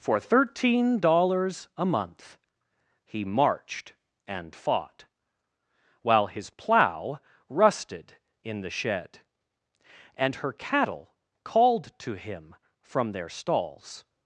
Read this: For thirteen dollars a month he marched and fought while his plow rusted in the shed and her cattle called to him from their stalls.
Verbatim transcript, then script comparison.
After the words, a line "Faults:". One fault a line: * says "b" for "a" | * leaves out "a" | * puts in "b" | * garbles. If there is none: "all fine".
For thirteen dollars a month he marched and fought while his plow rusted in the shed and her cattle called to him from their stalls.
Faults:
all fine